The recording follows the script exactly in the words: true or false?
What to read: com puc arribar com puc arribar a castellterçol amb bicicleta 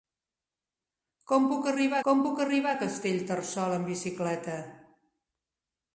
true